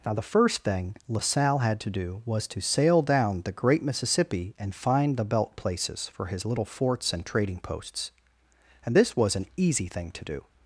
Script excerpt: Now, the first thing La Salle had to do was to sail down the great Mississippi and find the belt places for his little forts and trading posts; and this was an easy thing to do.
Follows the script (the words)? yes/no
yes